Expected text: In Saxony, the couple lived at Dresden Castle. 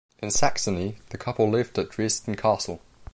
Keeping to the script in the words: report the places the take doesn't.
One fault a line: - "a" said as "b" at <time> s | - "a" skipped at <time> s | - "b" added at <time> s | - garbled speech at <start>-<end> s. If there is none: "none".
none